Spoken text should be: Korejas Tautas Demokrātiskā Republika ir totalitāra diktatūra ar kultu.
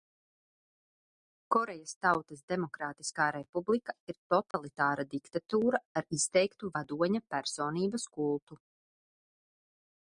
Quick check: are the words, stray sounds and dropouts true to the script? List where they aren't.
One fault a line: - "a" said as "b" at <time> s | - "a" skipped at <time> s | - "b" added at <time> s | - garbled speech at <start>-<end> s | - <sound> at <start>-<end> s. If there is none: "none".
- dropout at 4.5-4.5 s
- "izteiktu vadoņa personības" added at 6.2 s